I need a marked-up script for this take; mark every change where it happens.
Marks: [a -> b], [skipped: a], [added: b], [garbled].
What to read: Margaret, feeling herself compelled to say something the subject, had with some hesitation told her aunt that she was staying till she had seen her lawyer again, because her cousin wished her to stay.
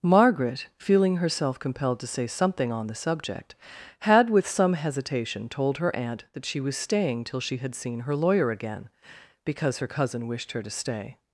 Margaret, feeling herself compelled to say something [added: on] the subject, had with some hesitation told her aunt that she was staying till she had seen her lawyer again, because her cousin wished her to stay.